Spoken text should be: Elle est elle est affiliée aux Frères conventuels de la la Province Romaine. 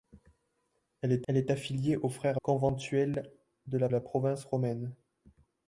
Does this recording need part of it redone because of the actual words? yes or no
no